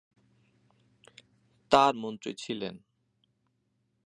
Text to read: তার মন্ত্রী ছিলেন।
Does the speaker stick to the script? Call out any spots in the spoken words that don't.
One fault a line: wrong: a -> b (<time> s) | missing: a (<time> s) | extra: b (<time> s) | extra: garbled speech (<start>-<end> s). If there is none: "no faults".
no faults